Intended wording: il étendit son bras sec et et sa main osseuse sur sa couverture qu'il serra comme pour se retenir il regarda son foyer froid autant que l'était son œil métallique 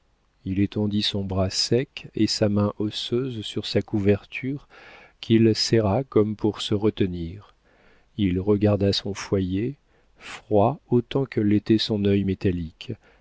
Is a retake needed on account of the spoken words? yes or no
yes